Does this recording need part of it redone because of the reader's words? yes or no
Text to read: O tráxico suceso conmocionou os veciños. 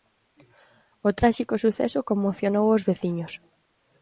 no